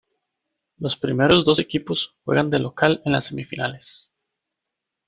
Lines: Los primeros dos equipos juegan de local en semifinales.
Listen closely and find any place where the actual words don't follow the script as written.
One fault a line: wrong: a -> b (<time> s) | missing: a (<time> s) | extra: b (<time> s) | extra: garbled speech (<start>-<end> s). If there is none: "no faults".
extra: las (3.1 s)